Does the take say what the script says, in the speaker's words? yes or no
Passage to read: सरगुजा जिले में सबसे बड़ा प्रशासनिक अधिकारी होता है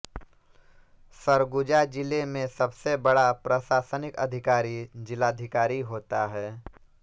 no